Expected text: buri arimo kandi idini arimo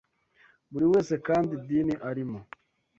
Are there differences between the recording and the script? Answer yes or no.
yes